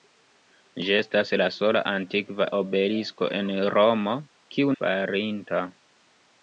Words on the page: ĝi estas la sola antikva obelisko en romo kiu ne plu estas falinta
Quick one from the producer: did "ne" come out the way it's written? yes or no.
no